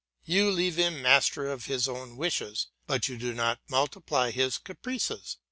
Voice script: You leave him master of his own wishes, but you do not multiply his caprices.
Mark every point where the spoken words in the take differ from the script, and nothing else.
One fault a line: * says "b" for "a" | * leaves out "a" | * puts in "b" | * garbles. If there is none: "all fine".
all fine